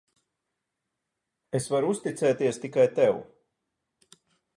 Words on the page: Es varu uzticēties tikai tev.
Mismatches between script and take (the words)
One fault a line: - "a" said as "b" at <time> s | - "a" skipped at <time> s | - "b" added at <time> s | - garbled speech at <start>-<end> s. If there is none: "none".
none